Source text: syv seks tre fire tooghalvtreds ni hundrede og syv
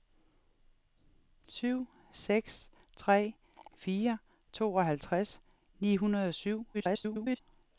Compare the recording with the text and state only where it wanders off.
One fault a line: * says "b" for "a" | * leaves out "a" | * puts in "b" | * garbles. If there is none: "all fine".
* garbles